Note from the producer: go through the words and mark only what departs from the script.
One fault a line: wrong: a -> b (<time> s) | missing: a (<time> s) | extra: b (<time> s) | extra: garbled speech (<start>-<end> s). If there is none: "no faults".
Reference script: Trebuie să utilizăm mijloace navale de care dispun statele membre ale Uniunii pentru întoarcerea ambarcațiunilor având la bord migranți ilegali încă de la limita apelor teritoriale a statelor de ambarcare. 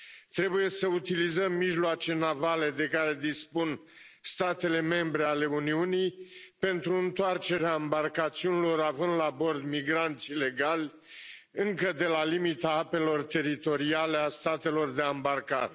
no faults